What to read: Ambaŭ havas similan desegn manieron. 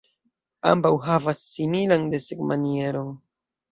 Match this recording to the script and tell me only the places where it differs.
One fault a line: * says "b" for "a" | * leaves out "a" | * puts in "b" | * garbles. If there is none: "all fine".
all fine